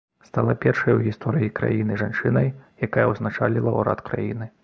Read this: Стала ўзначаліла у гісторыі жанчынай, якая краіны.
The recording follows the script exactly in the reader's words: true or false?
false